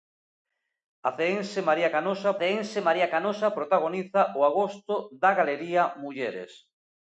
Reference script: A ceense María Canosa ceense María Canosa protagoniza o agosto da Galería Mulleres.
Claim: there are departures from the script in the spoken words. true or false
false